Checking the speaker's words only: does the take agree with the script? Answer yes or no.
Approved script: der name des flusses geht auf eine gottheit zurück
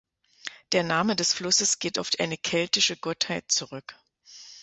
no